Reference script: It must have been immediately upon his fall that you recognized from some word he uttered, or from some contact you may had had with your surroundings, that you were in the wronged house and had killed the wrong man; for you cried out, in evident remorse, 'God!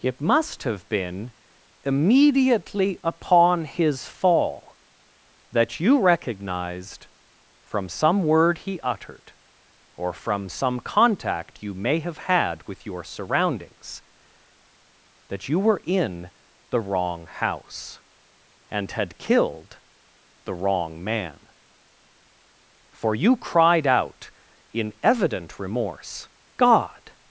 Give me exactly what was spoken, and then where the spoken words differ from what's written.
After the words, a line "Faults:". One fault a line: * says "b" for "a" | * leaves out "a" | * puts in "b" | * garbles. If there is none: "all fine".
It must have been immediately upon his fall that you recognized from some word he uttered, or from some contact you may have had with your surroundings, that you were in the wrong house and had killed the wrong man; for you cried out, in evident remorse, 'God!
Faults:
* says "have" for "had"
* says "wrong" for "wronged"